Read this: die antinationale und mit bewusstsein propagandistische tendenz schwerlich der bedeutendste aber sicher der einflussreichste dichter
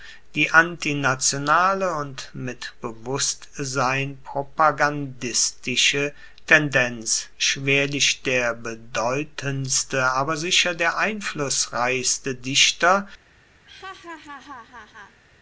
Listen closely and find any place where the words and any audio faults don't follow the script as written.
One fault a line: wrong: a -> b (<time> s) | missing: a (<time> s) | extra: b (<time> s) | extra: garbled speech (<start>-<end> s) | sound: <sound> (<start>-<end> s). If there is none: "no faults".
sound: laugh (13.7-15.2 s)